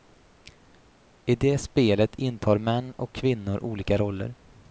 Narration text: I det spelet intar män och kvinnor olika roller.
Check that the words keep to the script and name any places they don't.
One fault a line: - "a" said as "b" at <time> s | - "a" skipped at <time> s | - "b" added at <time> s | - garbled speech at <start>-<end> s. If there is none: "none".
none